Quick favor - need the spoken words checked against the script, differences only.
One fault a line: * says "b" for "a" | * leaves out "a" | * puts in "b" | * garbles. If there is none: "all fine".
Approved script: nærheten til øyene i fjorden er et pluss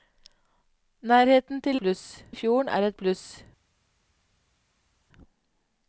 * says "pluss" for "øyene"